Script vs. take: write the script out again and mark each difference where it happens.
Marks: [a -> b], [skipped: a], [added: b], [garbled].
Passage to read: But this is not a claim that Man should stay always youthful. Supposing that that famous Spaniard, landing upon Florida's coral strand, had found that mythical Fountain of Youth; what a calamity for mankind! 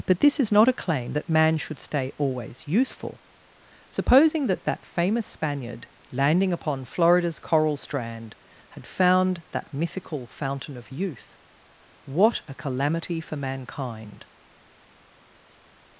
But this is not a claim that Man should stay always youthful. Supposing that that famous Spaniard, landing upon Florida's coral strand, had found that mythical Fountain of Youth; what a calamity for mankind!